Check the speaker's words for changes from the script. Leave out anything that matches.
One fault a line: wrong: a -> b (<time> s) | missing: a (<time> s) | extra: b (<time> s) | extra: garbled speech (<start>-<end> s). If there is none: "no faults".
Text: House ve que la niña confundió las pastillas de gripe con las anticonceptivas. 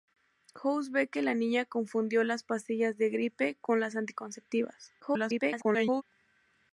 extra: garbled speech (5.0-6.0 s)